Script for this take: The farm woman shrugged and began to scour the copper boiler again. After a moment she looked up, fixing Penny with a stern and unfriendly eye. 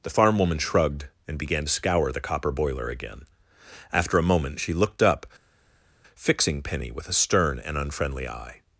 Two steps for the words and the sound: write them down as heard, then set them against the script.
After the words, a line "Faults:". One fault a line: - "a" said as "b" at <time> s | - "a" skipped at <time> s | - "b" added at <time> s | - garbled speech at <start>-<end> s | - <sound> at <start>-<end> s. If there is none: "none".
The farm woman shrugged and began to scour the copper boiler again. After a moment she looked up, fixing Penny with a stern and unfriendly eye.
Faults:
none